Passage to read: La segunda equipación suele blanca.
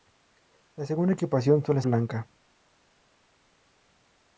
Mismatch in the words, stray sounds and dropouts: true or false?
false